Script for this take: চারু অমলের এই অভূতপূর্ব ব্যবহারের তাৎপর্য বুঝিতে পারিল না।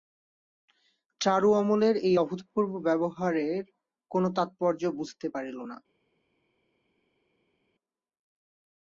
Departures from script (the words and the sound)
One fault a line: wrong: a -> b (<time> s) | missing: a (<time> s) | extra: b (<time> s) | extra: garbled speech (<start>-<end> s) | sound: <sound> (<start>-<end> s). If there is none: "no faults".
extra: কোনো (4.1 s)